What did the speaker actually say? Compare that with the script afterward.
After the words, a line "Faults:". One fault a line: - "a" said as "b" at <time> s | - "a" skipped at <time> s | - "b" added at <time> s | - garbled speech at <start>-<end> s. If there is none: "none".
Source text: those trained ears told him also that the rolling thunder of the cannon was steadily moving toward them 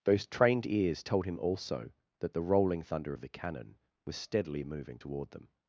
those trained ears told him also that the rolling thunder of the cannon was steadily moving toward them
Faults:
none